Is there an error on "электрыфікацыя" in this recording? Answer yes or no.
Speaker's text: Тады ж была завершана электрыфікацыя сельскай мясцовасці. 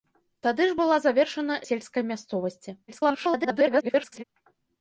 yes